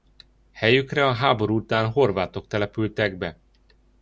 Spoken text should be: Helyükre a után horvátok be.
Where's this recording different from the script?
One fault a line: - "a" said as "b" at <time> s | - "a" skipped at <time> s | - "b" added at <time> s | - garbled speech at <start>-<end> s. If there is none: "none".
- "háború" added at 1.1 s
- "települtek" added at 2.5 s